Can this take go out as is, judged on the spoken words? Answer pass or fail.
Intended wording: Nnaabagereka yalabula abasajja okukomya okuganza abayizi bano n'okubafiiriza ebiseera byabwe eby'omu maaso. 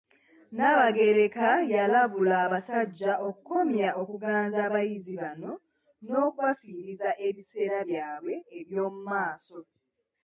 pass